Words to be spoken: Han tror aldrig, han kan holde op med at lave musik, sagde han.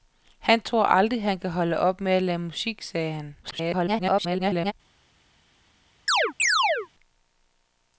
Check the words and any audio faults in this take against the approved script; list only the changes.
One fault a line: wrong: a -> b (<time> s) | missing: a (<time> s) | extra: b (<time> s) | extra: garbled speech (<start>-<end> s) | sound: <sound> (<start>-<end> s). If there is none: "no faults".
extra: garbled speech (3.4-4.7 s)
sound: chirp (6.1-6.9 s)